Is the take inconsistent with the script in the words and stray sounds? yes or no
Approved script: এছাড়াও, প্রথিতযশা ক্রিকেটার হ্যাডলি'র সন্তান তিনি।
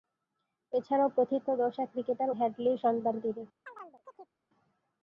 yes